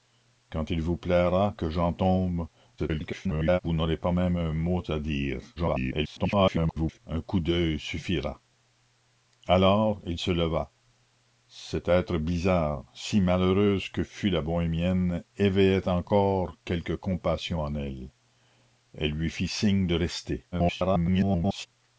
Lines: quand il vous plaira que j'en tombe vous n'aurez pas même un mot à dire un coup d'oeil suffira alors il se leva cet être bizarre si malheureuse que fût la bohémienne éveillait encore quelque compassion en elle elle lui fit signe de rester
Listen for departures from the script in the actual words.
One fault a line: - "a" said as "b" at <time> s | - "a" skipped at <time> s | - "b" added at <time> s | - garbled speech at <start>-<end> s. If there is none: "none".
- garbled speech at 2.8-3.6 s
- garbled speech at 5.6-7.0 s
- garbled speech at 20.5-21.7 s